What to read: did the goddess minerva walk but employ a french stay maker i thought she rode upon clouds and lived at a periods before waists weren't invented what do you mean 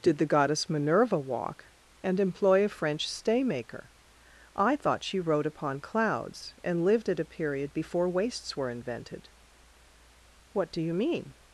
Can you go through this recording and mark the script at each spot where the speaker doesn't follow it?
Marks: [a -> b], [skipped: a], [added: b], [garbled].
did the goddess minerva walk [but -> and] employ a french stay maker i thought she rode upon clouds and lived at a [periods -> period] before waists [weren't -> were] invented what do you mean